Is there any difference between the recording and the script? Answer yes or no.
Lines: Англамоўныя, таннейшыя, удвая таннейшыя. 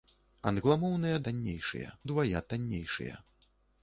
no